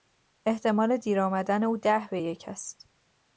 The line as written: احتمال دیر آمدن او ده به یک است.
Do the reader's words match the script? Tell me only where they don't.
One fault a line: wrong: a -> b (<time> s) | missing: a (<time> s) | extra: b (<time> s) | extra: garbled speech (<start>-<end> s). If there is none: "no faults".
no faults